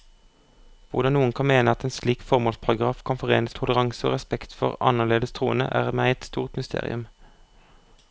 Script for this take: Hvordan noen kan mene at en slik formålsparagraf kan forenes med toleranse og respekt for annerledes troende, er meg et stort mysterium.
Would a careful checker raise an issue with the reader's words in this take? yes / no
yes